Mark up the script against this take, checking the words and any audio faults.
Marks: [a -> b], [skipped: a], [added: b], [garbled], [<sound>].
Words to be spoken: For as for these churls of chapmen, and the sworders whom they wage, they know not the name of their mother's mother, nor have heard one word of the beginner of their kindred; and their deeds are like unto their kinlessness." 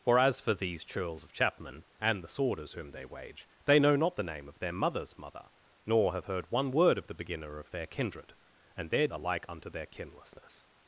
For as for these churls of chapmen, and the sworders whom they wage, they know not the name of their mother's mother, nor have heard one word of the beginner of their kindred; and their [skipped: deeds] are like unto their kinlessness."